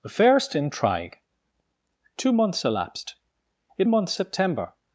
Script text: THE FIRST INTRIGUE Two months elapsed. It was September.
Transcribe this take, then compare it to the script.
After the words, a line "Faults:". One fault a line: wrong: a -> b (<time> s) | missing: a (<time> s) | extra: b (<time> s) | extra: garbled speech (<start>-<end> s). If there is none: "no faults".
THE FIRST INTRIGUE Two months elapsed. It months September.
Faults:
wrong: was -> months (3.9 s)